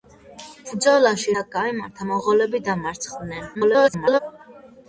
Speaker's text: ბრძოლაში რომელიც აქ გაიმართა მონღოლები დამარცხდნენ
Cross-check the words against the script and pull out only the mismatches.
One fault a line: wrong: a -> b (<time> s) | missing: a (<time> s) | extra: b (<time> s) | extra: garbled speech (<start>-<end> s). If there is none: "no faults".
missing: რომელიც (1.4 s)
extra: garbled speech (3.5-4.2 s)